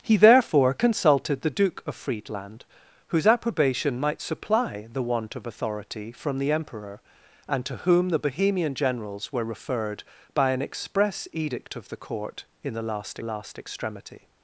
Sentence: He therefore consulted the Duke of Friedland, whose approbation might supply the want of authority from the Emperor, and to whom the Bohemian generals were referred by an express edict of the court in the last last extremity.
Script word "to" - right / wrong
right